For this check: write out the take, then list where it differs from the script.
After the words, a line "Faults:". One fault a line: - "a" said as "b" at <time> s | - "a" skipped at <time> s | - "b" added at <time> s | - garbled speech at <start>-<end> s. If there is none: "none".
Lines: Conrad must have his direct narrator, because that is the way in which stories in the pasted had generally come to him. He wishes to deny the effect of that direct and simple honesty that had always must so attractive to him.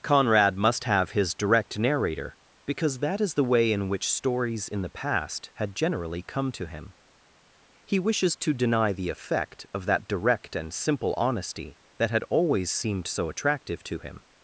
Conrad must have his direct narrator, because that is the way in which stories in the past had generally come to him. He wishes to deny the effect of that direct and simple honesty that had always seemed so attractive to him.
Faults:
- "pasted" said as "past" at 4.9 s
- "must" said as "seemed" at 12.7 s